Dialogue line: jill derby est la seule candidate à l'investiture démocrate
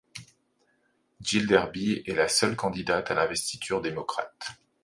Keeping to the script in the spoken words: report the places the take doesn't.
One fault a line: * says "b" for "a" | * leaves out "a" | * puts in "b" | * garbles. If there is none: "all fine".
all fine